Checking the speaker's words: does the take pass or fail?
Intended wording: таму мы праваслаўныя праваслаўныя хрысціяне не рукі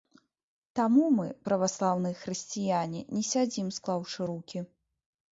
fail